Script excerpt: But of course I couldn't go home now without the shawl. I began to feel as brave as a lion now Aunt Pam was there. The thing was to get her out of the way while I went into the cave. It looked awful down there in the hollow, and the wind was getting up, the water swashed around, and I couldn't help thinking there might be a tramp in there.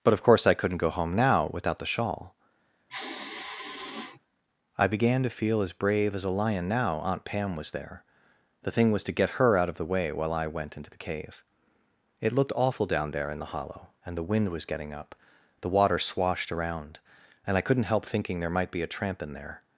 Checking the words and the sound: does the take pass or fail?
fail